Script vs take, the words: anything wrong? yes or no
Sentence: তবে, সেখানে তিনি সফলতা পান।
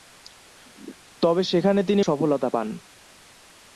no